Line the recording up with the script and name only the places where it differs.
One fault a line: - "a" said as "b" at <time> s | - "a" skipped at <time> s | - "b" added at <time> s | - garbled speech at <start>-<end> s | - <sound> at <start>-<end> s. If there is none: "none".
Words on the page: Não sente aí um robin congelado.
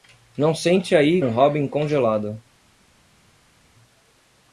none